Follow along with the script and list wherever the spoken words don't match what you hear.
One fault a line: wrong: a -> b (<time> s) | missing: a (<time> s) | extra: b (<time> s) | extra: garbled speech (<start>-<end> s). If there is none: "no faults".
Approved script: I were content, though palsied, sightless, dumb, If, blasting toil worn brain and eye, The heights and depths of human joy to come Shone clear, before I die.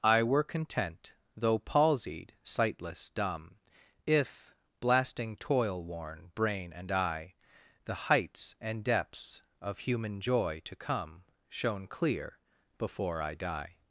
no faults